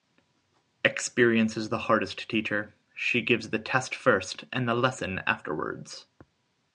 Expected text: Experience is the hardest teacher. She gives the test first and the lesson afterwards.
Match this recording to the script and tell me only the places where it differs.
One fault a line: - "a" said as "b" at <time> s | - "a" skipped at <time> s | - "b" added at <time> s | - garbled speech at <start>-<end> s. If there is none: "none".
none